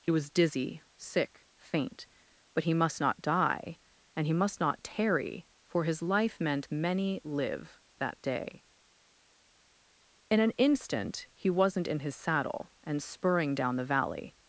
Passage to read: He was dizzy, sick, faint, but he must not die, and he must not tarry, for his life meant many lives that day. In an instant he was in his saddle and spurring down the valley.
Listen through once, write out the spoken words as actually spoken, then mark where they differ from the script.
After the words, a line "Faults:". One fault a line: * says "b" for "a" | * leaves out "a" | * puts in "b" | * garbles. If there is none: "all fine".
He was dizzy, sick, faint, but he must not die, and he must not tarry, for his life meant many live that day. In an instant he wasn't in his saddle and spurring down the valley.
Faults:
* says "live" for "lives"
* says "wasn't" for "was"